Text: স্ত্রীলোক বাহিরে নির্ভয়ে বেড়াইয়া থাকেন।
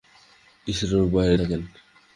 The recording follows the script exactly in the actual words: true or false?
false